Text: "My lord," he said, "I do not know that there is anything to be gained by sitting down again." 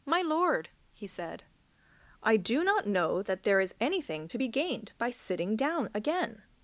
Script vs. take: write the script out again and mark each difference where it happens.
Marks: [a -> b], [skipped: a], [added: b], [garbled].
"My lord," he said, "I do not know that there is anything to be gained by sitting down again."